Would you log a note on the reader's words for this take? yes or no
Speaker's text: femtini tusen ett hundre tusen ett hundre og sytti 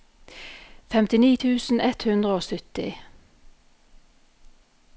yes